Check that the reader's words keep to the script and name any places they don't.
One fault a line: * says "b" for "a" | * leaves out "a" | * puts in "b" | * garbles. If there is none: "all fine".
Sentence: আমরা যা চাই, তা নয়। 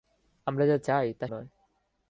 all fine